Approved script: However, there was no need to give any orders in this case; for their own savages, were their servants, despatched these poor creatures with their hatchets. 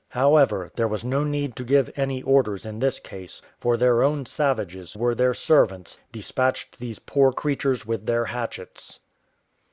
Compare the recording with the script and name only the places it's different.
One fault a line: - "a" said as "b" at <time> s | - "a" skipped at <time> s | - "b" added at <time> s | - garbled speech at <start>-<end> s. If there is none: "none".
none